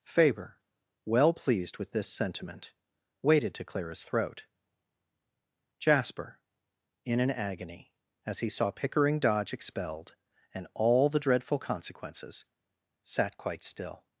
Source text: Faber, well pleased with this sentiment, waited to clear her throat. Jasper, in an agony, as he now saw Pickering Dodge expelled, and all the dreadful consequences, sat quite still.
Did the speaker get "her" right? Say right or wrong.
wrong